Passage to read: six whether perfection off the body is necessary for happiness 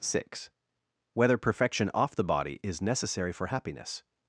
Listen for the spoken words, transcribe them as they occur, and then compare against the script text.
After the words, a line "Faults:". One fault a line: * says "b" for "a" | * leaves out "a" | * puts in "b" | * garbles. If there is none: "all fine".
six whether perfection off the body is necessary for happiness
Faults:
all fine